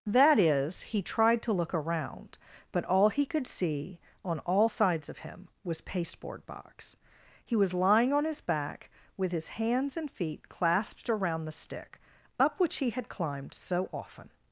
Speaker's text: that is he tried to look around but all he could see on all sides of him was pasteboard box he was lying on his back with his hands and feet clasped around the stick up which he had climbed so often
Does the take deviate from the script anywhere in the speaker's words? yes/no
no